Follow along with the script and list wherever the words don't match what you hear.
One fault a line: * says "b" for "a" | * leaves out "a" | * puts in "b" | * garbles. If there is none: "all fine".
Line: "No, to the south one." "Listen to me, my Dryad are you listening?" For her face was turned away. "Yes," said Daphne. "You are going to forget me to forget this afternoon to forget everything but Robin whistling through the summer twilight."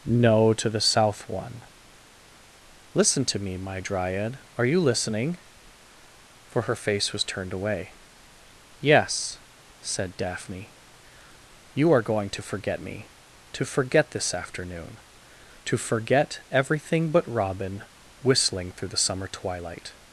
all fine